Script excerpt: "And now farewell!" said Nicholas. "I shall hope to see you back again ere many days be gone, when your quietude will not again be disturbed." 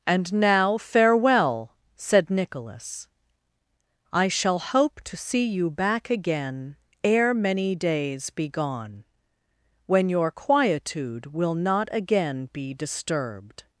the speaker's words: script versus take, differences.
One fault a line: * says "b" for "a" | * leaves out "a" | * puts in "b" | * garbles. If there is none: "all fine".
all fine